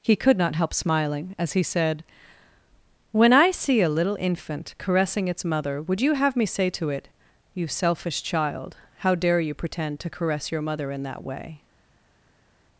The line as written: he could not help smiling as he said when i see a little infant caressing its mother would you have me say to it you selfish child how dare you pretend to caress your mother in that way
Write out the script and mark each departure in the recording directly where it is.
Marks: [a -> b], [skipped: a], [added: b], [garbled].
he could not help smiling as he said when i see a little infant caressing its mother would you have me say to it you selfish child how dare you pretend to caress your mother in that way